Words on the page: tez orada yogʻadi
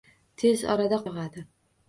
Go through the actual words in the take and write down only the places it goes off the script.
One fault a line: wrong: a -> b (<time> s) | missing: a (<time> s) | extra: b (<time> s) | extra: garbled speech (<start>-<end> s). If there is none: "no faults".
no faults